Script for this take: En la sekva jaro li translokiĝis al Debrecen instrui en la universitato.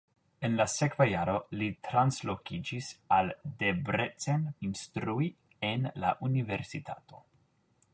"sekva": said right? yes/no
yes